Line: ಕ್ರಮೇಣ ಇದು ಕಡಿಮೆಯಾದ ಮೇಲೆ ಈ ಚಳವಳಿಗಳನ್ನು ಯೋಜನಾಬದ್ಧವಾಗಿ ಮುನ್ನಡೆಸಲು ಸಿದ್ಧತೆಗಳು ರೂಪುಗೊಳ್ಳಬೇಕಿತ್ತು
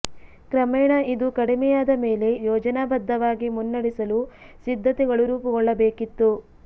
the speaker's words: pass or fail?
fail